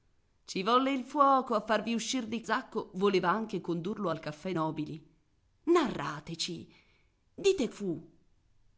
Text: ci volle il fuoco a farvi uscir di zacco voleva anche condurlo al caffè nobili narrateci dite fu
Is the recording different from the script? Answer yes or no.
no